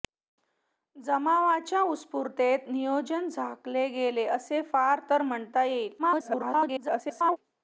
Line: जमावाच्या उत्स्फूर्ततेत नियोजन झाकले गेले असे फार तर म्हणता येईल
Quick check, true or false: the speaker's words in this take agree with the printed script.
false